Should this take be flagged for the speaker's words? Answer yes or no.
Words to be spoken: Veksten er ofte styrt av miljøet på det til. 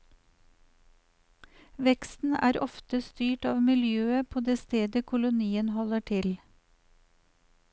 yes